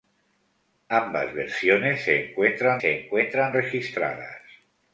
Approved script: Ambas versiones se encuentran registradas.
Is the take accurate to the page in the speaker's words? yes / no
no